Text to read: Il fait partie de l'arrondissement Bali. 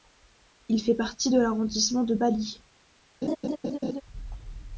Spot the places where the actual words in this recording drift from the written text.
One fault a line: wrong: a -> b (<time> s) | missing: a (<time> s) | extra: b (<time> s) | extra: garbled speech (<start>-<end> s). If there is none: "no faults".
extra: de (2.0 s)